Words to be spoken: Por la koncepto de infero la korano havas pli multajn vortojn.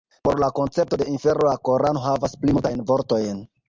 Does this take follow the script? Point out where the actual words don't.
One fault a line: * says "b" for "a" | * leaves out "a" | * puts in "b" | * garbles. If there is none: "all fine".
all fine